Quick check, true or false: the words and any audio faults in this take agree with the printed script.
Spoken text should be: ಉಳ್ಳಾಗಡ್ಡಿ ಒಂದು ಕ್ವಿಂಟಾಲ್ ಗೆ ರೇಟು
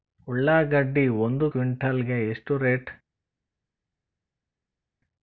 false